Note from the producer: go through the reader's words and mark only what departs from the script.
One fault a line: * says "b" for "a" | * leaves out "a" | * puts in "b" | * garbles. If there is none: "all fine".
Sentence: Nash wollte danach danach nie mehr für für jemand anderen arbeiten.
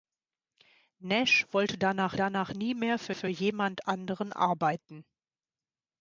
all fine